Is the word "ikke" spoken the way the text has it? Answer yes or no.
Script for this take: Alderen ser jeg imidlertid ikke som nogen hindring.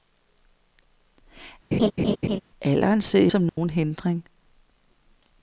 no